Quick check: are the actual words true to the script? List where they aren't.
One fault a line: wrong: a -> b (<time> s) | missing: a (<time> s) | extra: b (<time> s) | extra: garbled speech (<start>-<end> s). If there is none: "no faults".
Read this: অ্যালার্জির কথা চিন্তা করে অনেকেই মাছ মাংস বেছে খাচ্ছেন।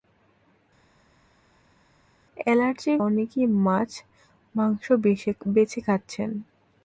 missing: কথা চিন্তা করে (3.0 s)